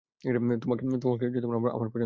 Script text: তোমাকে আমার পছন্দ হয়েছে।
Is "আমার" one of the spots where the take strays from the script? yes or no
no